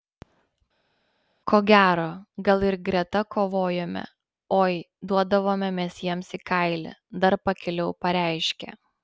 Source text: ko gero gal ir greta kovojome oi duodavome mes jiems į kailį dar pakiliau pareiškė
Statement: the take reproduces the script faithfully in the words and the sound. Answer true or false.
true